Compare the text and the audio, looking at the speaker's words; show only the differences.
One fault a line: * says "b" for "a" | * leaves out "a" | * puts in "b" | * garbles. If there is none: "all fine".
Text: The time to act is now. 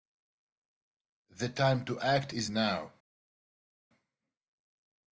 all fine